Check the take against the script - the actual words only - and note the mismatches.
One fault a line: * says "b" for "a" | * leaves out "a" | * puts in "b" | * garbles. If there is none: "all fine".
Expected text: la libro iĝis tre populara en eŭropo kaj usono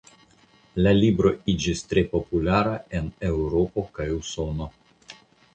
all fine